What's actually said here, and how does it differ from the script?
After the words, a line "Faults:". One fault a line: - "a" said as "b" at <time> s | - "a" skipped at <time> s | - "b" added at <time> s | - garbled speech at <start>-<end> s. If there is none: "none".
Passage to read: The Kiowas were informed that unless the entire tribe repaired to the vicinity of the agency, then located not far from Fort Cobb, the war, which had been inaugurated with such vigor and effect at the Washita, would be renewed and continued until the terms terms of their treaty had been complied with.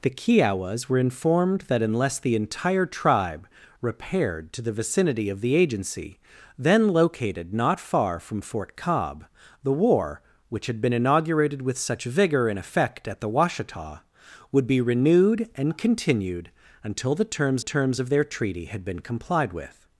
The Kiowas were informed that unless the entire tribe repaired to the vicinity of the agency, then located not far from Fort Cobb, the war, which had been inaugurated with such vigor and effect at the Washita, would be renewed and continued until the terms terms of their treaty had been complied with.
Faults:
none